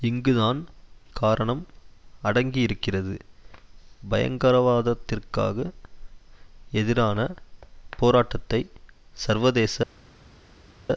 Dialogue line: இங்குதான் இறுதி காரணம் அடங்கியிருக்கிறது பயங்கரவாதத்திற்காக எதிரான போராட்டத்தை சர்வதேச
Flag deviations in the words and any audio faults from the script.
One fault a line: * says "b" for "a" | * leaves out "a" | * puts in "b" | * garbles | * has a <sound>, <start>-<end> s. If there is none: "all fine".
* leaves out "இறுதி"